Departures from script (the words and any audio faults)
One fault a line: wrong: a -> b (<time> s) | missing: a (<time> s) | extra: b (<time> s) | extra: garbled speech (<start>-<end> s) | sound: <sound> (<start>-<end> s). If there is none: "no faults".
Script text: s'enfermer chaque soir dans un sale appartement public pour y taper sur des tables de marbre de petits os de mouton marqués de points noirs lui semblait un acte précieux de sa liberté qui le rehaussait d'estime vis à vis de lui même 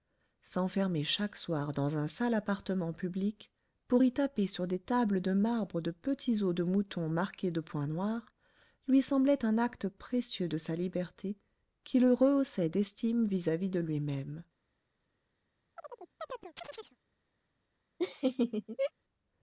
sound: chirp (15.8-17.0 s)
sound: laugh (18.0-18.9 s)